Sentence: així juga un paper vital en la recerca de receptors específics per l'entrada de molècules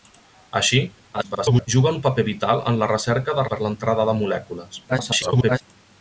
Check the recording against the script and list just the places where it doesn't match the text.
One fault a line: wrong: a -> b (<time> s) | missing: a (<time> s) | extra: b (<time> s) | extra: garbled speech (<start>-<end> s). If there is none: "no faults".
extra: garbled speech (1.1-1.7 s)
missing: receptors específics (3.5 s)
extra: garbled speech (4.9-5.6 s)